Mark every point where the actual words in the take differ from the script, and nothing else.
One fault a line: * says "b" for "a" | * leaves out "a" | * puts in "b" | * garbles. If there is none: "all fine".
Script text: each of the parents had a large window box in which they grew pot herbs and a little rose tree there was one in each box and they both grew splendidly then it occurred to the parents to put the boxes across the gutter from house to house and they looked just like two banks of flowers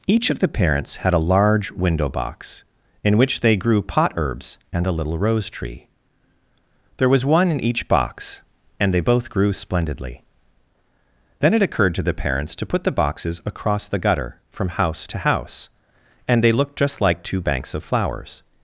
all fine